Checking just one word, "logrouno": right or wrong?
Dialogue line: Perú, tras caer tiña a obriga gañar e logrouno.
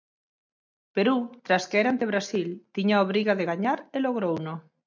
right